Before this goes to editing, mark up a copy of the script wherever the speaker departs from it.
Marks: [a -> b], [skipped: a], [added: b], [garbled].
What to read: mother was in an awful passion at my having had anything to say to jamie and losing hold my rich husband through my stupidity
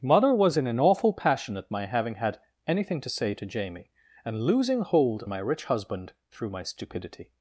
mother was in an awful passion at my having had anything to say to jamie and losing hold my rich husband through my stupidity